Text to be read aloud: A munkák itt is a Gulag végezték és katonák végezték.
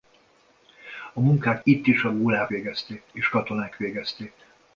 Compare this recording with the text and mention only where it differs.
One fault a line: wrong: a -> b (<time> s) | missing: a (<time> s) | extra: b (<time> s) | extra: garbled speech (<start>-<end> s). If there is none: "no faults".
no faults